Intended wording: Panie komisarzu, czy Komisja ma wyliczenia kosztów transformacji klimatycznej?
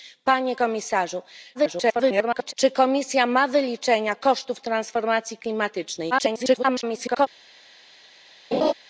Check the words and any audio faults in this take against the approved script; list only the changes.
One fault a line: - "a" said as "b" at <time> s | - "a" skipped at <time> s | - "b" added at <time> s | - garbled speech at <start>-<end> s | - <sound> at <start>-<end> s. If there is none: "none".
- garbled speech at 1.5-2.5 s
- garbled speech at 6.1-7.3 s
- laugh at 8.5-8.7 s